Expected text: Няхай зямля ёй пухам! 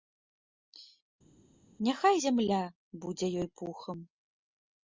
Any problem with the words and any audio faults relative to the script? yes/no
yes